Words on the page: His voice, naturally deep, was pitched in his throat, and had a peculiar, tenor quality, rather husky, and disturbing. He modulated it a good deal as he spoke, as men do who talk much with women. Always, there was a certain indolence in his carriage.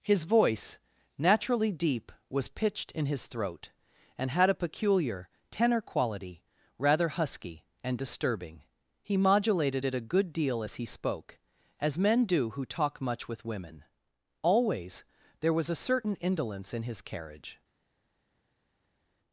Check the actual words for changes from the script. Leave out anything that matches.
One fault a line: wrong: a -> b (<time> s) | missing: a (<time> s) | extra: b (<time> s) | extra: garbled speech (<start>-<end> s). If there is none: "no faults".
no faults